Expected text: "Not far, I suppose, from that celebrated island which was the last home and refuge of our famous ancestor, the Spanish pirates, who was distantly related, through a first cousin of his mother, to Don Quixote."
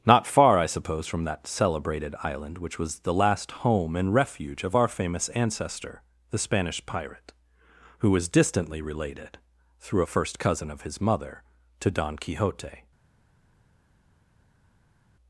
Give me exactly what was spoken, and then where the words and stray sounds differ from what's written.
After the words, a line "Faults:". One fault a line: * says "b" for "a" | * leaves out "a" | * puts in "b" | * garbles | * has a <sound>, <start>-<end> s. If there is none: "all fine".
"Not far, I suppose, from that celebrated island which was the last home and refuge of our famous ancestor, the Spanish pirate, who was distantly related, through a first cousin of his mother, to Don Quixote."
Faults:
* says "pirate" for "pirates"